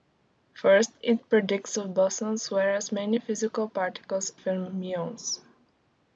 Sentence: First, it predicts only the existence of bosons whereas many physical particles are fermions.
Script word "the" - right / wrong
wrong